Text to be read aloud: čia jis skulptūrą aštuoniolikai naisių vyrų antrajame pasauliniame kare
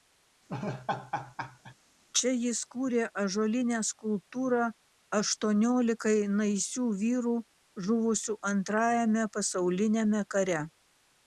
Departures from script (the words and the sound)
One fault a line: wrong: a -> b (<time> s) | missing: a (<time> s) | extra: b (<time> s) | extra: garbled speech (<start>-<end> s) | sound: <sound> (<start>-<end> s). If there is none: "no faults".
sound: laugh (0.5-1.8 s)
extra: kūrė ąžuolinę (2.7 s)
extra: žuvusių (7.9 s)